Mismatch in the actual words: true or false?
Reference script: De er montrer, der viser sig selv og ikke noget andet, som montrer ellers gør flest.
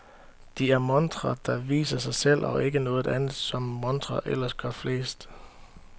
false